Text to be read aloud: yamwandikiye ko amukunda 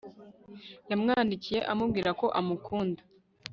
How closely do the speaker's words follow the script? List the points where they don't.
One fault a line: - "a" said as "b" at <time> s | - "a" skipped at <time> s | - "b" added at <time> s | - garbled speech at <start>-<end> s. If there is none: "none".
- "amubwira" added at 1.7 s